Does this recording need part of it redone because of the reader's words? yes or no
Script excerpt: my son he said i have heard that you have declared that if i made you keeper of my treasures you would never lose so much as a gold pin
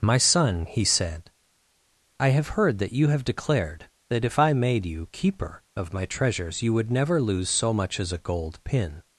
no